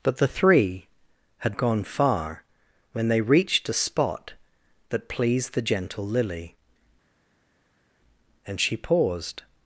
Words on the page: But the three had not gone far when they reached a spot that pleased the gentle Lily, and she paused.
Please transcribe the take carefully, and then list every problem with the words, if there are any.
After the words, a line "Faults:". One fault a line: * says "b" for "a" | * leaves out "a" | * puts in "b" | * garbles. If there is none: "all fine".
But the three had gone far when they reached a spot that pleased the gentle Lily, and she paused.
Faults:
* leaves out "not"